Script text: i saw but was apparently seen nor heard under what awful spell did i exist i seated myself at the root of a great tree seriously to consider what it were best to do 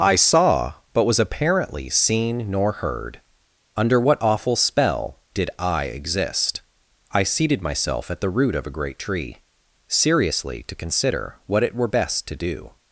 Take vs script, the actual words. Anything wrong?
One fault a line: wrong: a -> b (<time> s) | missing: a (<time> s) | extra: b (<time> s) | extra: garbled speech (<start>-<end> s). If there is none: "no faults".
no faults